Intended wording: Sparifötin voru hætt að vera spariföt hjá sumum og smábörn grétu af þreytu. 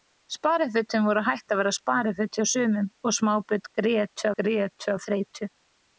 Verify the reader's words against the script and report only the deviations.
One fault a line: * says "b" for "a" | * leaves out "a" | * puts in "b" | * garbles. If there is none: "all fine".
* puts in "grétu"